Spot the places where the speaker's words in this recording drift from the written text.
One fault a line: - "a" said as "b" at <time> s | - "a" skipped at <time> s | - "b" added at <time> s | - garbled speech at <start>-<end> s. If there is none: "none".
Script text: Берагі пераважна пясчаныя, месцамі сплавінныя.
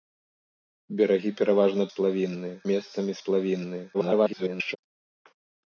- "пясчаныя" said as "сплавінныя" at 1.9 s
- garbled speech at 3.9-4.8 s